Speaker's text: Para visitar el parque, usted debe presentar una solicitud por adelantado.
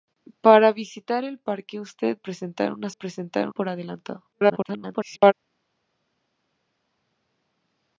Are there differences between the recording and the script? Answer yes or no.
yes